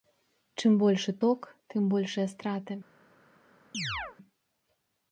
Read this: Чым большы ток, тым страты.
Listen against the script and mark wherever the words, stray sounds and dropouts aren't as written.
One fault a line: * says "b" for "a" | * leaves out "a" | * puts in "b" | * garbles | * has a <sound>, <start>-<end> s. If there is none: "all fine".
* puts in "большыя"
* has a chirp, 3.7-4.2 s